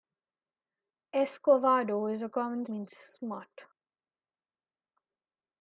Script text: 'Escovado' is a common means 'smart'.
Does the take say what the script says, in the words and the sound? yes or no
yes